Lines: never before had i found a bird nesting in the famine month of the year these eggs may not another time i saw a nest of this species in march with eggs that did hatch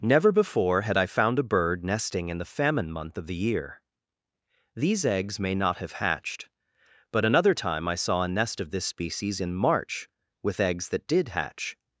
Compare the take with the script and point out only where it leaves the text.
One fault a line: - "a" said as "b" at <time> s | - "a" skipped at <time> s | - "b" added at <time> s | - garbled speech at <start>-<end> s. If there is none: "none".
- "have hatched but" added at 5.8 s